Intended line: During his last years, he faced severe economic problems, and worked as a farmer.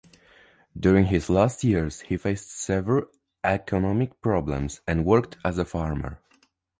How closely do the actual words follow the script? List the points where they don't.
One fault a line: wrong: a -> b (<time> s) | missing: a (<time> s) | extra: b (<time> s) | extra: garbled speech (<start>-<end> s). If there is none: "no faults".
no faults